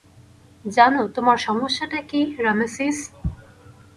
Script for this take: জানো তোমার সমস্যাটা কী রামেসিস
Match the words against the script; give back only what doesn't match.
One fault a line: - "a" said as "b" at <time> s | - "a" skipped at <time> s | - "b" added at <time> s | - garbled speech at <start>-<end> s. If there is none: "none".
none